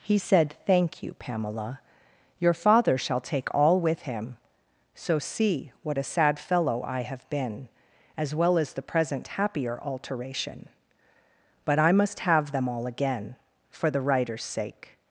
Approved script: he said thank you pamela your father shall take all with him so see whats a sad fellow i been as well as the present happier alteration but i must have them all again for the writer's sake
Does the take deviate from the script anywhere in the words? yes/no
yes